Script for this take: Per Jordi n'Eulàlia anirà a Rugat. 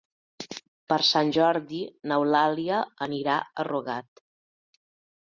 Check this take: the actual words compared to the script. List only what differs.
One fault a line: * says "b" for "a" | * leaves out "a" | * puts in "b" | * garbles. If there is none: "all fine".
* puts in "Sant"